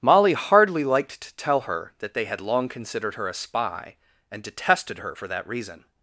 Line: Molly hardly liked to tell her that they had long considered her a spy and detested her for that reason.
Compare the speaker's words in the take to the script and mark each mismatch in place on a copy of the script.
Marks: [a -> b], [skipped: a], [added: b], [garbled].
Molly hardly liked to tell her that they had long considered her a spy and detested her for that reason.